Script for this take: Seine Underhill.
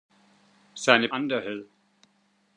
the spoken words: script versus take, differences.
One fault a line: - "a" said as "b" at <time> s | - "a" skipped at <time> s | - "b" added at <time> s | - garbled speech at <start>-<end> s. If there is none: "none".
none